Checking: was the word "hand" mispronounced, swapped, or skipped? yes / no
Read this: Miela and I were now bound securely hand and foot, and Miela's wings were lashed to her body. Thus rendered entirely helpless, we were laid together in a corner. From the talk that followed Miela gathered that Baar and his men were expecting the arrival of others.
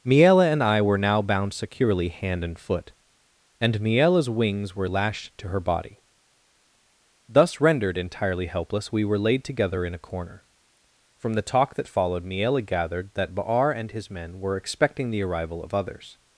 no